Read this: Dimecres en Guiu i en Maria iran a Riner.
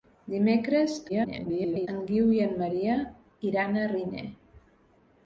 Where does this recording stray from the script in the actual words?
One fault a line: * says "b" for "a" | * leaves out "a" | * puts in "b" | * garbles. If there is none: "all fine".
* garbles